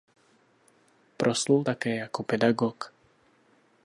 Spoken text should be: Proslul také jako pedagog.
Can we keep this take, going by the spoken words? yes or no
yes